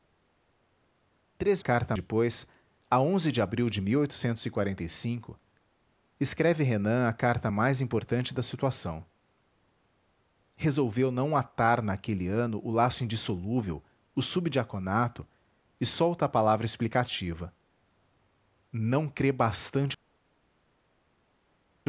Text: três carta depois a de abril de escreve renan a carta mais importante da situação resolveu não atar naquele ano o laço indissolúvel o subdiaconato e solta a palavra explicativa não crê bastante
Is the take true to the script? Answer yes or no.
yes